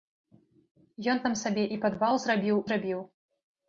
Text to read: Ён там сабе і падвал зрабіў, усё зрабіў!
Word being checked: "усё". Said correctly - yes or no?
no